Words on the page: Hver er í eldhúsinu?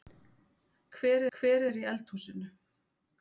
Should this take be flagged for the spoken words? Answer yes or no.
yes